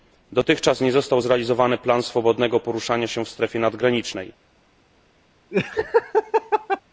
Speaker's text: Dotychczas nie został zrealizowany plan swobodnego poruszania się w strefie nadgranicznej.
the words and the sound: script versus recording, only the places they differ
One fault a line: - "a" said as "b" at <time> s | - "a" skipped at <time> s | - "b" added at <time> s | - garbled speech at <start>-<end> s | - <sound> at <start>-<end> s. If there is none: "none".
- laugh at 5.5-6.8 s